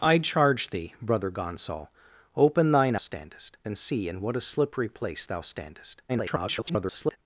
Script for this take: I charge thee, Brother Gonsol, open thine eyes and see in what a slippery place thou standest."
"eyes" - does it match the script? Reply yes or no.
no